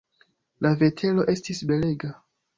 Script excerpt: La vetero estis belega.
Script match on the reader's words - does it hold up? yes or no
yes